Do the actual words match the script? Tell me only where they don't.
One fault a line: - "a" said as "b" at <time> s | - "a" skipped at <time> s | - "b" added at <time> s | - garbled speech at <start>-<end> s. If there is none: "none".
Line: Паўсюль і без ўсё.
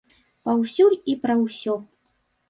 - "без" said as "пра" at 1.2 s